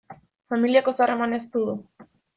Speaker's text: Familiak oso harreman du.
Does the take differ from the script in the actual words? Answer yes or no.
yes